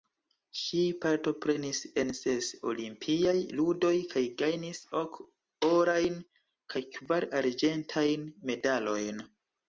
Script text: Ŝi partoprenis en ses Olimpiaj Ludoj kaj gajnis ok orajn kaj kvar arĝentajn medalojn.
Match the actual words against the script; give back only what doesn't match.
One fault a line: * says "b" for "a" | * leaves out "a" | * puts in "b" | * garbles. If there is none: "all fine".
all fine